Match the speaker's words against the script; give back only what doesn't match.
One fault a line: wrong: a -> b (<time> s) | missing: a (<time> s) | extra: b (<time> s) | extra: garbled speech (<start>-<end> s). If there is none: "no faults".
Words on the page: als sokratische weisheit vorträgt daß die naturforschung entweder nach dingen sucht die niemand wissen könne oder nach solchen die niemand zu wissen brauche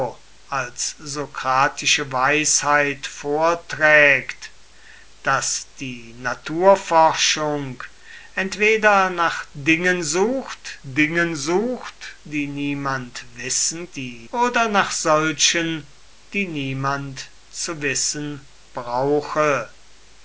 extra: dingen sucht (10.8 s)
wrong: könne -> die (13.9 s)